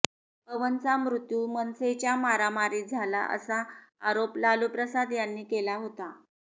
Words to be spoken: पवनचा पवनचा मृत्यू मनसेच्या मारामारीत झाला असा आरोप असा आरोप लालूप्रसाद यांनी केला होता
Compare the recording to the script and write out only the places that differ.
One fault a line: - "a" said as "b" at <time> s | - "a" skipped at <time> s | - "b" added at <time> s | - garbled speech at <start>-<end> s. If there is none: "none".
- "पवनचा" skipped at 0.9 s
- "असा आरोप" skipped at 4.4 s